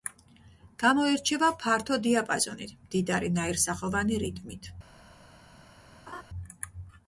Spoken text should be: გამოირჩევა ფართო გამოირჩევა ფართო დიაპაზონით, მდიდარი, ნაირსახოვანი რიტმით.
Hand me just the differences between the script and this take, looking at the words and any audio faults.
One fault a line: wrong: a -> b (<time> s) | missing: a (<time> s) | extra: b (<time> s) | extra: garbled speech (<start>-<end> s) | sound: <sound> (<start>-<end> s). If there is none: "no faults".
missing: გამოირჩევა ფართო (2.0 s)
sound: laugh (6.1-6.2 s)